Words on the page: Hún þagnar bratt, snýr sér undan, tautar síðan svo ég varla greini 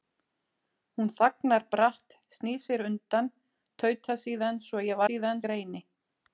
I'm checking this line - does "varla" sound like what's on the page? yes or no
no